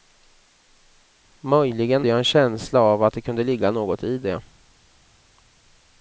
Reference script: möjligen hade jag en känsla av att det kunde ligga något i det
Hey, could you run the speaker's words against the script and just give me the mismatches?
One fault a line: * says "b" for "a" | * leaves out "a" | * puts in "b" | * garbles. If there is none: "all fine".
* leaves out "hade"